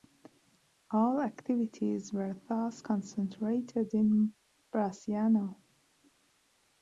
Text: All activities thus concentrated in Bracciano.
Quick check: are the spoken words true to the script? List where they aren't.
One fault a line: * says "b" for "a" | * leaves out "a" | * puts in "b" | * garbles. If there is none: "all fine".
* puts in "were"